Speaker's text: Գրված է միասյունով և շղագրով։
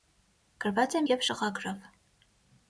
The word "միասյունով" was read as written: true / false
false